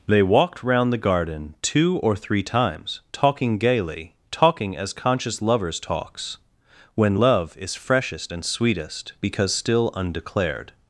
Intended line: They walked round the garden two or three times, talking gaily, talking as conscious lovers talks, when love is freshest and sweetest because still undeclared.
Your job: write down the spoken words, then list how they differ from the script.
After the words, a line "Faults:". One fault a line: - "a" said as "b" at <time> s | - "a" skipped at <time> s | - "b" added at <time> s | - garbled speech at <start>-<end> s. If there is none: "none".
They walked round the garden two or three times, talking gaily, talking as conscious lovers talks, when love is freshest and sweetest because still undeclared.
Faults:
none